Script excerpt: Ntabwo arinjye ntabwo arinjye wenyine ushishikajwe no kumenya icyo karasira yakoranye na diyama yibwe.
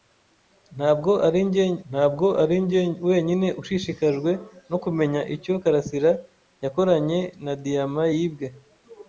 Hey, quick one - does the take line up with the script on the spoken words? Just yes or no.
yes